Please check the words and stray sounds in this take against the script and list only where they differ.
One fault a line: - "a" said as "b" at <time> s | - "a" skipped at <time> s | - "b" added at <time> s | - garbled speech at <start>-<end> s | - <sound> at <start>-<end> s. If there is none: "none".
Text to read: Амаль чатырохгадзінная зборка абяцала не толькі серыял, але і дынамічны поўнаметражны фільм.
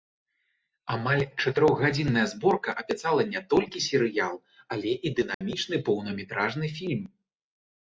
- dropout at 5.3-5.4 s